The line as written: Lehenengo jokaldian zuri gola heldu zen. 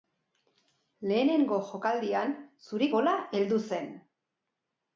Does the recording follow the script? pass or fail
pass